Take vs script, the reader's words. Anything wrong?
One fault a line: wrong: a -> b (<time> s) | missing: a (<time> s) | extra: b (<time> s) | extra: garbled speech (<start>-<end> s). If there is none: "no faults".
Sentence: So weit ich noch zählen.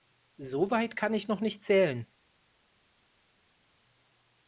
extra: kann (0.9 s)
extra: nicht (1.4 s)